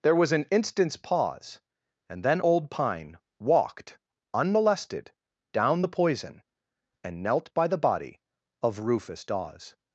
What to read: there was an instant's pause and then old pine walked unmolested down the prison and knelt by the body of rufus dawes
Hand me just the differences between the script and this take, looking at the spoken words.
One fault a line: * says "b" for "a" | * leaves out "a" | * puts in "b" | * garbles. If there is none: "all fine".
* says "poison" for "prison"